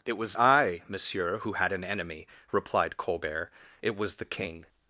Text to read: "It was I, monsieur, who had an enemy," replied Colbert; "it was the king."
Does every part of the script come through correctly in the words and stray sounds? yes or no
yes